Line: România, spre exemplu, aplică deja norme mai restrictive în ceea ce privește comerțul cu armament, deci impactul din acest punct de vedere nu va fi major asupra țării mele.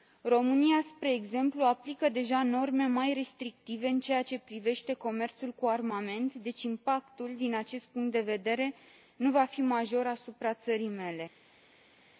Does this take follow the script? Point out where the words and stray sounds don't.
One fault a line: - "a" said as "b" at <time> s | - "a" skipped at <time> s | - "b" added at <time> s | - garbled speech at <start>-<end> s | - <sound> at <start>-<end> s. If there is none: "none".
none